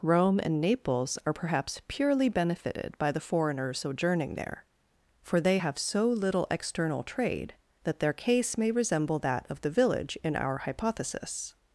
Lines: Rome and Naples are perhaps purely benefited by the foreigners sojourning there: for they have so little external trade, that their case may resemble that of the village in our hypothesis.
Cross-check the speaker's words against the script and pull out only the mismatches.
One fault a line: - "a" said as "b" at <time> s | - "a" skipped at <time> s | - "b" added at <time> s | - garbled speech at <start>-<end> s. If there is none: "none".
none